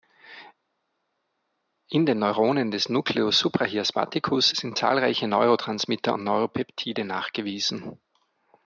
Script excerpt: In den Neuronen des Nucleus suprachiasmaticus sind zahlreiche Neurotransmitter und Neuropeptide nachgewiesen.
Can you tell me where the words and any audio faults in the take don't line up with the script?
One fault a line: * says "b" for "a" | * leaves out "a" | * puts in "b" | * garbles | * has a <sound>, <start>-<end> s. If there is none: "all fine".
all fine